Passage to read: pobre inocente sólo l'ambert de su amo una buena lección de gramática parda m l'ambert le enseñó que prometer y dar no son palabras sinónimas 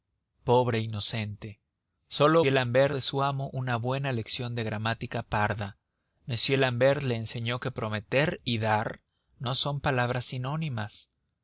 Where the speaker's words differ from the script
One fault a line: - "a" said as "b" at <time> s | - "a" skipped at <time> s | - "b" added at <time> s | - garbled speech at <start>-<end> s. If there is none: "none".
none